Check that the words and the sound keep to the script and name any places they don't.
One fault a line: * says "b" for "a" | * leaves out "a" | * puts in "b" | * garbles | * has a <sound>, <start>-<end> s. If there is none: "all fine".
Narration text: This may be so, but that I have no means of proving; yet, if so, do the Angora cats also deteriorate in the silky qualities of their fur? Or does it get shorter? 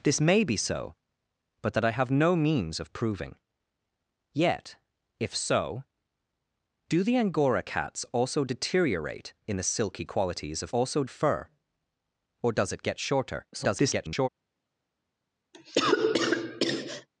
* says "also" for "their"
* garbles
* has a cough, 15.5-17.1 s